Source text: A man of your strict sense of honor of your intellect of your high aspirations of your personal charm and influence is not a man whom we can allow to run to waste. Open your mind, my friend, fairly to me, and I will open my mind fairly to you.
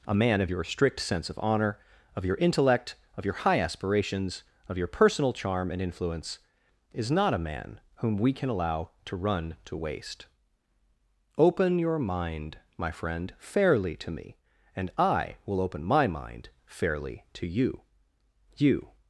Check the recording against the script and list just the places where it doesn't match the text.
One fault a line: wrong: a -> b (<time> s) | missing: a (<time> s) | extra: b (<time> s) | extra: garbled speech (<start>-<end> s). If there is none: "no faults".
extra: you (18.6 s)